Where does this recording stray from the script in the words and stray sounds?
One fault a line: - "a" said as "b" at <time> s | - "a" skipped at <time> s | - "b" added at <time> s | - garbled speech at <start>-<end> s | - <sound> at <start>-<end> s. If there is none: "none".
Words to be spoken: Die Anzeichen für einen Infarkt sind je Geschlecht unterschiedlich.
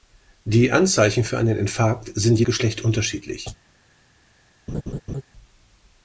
- laugh at 4.7-5.2 s